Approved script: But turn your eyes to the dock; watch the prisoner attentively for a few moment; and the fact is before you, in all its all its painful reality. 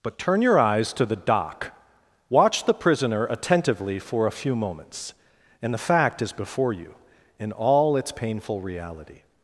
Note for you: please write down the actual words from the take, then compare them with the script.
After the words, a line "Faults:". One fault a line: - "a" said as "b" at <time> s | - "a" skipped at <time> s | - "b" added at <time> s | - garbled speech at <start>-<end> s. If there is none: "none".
But turn your eyes to the dock; watch the prisoner attentively for a few moments; and the fact is before you, in all its painful reality.
Faults:
- "moment" said as "moments" at 4.5 s
- "all its" skipped at 8.1 s